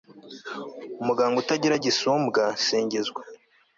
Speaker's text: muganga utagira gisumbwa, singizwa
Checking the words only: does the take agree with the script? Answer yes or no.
yes